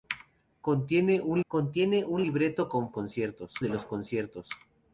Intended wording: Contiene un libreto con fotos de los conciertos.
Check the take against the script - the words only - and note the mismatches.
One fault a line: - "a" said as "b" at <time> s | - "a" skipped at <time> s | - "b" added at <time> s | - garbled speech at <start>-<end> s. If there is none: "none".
- "contiene un" added at 1.5 s
- "fotos" said as "conciertos" at 2.9 s